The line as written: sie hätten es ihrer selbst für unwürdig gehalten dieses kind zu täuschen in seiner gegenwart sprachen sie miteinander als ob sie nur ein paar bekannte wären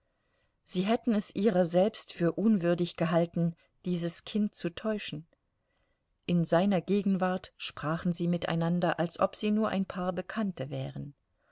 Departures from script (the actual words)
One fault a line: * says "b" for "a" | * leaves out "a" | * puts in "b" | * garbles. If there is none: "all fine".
all fine